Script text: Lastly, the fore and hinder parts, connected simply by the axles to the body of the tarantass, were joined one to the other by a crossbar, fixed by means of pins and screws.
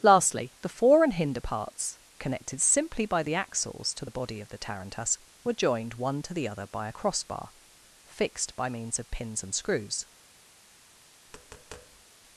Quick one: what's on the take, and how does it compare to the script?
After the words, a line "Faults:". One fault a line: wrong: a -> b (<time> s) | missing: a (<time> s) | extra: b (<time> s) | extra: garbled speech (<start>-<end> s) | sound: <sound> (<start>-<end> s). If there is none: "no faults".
Lastly, the fore and hinder parts, connected simply by the axles to the body of the tarantass, were joined one to the other by a crossbar, fixed by means of pins and screws.
Faults:
sound: tap (11.3-12.0 s)